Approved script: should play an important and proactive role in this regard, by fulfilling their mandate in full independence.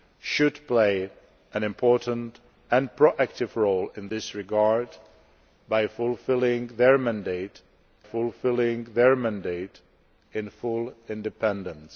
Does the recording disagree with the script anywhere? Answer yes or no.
yes